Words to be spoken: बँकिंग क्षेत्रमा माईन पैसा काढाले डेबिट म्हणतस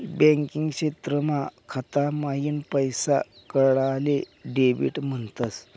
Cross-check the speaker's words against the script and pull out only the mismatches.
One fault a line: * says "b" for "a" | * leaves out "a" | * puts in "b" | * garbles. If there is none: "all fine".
* puts in "खाता"